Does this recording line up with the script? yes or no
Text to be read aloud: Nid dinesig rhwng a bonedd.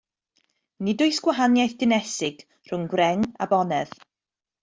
no